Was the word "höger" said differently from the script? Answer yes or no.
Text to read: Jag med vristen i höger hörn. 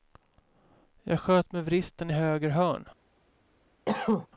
no